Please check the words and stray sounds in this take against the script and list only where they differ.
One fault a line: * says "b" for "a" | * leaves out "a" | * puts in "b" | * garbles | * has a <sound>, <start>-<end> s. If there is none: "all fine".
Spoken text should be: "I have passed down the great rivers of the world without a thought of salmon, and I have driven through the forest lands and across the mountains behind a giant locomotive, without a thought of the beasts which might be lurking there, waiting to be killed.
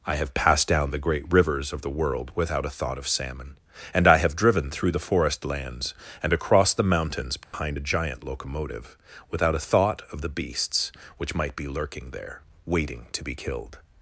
* has a dropout, 7.4-7.5 s